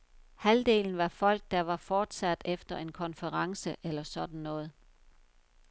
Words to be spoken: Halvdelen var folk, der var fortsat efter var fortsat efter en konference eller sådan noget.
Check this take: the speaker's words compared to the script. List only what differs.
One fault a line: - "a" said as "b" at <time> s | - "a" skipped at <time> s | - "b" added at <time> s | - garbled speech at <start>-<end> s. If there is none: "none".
- "var fortsat efter" skipped at 2.8 s